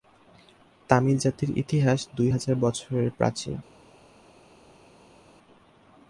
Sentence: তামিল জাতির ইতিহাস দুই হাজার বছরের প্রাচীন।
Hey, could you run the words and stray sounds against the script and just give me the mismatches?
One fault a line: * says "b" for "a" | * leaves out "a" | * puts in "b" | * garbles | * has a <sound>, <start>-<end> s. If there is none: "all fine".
all fine